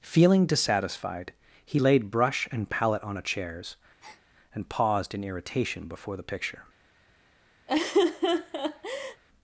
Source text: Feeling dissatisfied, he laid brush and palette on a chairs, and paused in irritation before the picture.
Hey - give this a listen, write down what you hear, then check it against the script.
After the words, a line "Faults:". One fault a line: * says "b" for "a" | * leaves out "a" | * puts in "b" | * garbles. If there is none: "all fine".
Feeling dissatisfied, he laid brush and palette on a chairs, and paused in irritation before the picture.
Faults:
all fine